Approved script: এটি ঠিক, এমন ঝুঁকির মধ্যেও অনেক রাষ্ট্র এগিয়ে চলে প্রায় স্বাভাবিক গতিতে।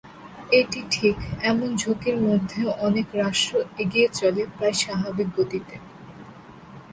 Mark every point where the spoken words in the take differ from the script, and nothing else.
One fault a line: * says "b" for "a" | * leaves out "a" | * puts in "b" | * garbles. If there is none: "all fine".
all fine